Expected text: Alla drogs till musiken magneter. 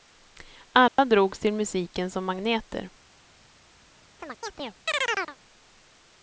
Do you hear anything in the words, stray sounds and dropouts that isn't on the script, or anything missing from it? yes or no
yes